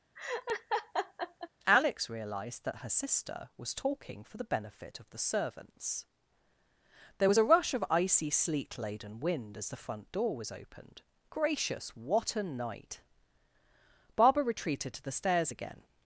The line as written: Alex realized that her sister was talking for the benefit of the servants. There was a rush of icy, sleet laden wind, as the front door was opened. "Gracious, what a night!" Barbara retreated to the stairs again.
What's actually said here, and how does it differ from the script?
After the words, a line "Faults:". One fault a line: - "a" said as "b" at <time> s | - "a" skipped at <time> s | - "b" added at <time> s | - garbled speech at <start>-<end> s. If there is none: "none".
Alex realized that her sister was talking for the benefit of the servants. There was a rush of icy, sleet laden wind, as the front door was opened. "Gracious, what a night!" Barbara retreated to the stairs again.
Faults:
none